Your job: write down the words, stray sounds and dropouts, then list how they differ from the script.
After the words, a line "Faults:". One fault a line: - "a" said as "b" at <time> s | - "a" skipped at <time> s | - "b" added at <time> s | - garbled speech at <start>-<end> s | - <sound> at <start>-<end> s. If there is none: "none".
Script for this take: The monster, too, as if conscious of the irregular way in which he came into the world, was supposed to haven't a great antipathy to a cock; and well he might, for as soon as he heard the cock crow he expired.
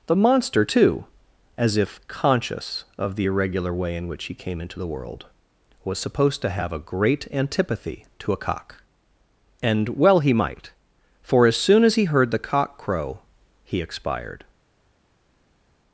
The monster, too, as if conscious of the irregular way in which he came into the world, was supposed to have a great antipathy to a cock; and well he might, for as soon as he heard the cock crow he expired.
Faults:
- "haven't" said as "have" at 6.5 s